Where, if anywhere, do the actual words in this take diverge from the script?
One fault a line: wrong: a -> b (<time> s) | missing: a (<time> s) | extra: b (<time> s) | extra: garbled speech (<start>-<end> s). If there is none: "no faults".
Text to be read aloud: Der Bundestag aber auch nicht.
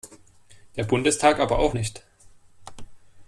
no faults